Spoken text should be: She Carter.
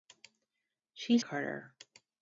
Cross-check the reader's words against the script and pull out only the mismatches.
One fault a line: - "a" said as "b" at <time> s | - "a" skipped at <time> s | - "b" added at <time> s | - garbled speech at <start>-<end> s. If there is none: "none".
none